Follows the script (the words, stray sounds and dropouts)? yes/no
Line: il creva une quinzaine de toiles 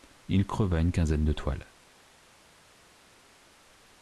yes